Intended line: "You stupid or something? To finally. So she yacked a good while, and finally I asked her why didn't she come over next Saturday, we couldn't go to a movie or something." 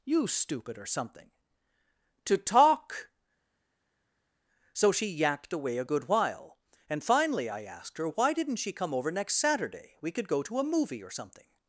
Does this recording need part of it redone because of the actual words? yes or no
yes